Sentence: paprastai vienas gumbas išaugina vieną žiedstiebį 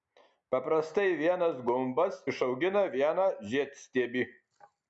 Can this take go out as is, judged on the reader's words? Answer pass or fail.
pass